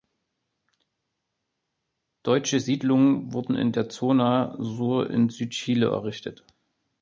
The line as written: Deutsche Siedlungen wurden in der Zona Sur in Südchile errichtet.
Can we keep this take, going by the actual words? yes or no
yes